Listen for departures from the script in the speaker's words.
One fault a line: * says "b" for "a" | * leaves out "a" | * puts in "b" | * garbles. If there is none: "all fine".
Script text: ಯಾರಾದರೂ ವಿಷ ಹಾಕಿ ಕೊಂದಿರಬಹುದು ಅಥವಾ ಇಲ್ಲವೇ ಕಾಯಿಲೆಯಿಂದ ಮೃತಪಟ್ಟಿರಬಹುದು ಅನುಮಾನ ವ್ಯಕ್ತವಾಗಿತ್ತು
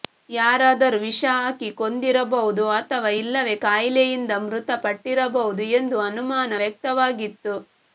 * puts in "ಎಂದು"